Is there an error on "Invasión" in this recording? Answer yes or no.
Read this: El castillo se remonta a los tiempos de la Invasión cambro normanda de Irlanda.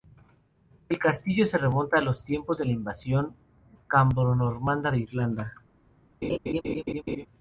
no